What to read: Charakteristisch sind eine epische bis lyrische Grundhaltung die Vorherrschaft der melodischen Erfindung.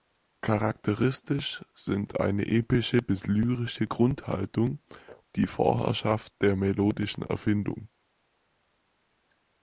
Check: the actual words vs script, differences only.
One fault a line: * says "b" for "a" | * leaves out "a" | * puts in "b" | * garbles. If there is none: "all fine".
all fine